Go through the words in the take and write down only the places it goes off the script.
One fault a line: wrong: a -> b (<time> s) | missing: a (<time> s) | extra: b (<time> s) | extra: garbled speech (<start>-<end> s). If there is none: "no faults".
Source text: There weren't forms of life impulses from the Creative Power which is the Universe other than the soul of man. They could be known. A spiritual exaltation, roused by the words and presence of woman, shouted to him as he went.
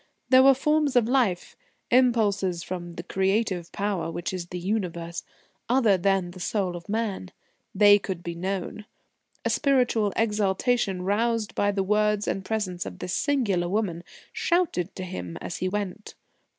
wrong: weren't -> were (0.4 s)
extra: this singular (13.0 s)